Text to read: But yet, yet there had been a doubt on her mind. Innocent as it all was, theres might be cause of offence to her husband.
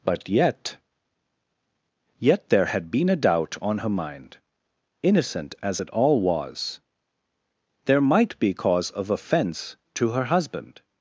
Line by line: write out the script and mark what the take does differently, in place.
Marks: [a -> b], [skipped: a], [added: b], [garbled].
But yet, yet there had been a doubt on her mind. Innocent as it all was, [theres -> there] might be cause of offence to her husband.